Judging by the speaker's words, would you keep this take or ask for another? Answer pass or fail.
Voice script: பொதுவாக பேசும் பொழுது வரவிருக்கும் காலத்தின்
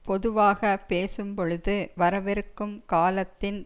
pass